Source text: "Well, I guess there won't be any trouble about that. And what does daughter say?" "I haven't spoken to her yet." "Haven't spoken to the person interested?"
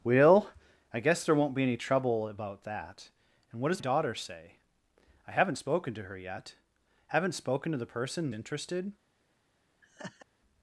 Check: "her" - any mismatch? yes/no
no